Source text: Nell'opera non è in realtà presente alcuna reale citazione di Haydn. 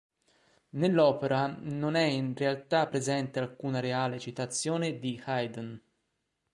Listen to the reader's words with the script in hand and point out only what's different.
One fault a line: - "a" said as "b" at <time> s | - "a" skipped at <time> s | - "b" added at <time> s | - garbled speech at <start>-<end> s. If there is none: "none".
none